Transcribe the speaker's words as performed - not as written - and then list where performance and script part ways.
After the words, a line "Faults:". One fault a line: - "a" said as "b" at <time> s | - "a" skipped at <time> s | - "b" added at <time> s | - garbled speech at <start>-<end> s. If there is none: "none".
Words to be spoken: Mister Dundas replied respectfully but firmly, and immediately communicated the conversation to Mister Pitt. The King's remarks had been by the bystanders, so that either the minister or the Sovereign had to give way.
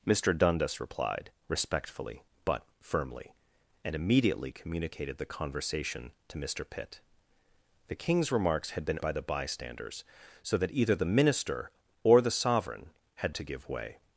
Mister Dundas replied respectfully but firmly, and immediately communicated the conversation to Mister Pitt. The King's remarks had been by the bystanders, so that either the minister or the Sovereign had to give way.
Faults:
none